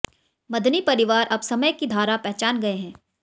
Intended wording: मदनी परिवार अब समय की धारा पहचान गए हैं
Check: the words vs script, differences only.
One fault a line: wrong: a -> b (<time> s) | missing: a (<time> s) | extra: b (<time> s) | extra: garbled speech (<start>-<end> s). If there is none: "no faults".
no faults